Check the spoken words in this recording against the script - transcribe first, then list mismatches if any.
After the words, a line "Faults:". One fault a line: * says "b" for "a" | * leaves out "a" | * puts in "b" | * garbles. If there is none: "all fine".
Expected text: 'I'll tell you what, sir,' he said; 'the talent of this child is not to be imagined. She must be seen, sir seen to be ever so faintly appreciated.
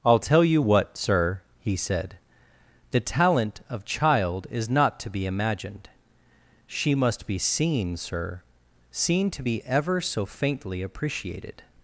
'I'll tell you what, sir,' he said; 'the talent of child is not to be imagined. She must be seen, sir seen to be ever so faintly appreciated.
Faults:
* leaves out "this"